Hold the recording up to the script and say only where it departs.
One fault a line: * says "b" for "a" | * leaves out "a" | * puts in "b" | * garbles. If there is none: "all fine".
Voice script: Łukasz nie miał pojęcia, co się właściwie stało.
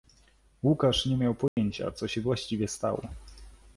all fine